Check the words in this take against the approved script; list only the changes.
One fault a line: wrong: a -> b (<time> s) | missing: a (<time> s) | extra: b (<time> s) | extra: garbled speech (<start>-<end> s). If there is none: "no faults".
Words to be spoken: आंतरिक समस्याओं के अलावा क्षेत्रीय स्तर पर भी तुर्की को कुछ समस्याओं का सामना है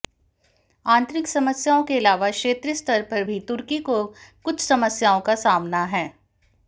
no faults